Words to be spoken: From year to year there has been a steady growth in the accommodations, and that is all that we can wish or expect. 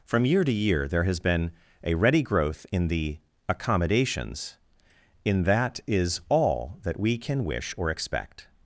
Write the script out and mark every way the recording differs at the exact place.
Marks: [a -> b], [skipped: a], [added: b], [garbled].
From year to year there has been a [steady -> ready] growth in the accommodations, [and -> in] that is all that we can wish or expect.